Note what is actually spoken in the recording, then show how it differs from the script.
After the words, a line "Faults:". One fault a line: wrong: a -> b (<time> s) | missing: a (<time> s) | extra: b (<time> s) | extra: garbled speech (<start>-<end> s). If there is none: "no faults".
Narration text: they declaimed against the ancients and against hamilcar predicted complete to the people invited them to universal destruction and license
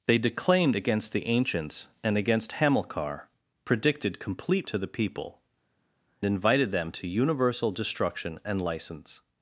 they declaimed against the ancients and against hamilcar predicted complete to the people invited them to universal destruction and license
Faults:
no faults